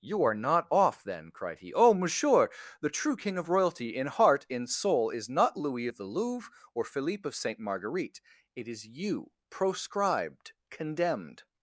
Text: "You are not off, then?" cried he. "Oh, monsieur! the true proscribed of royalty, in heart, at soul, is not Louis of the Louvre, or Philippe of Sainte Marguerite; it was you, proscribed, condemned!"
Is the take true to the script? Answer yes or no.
no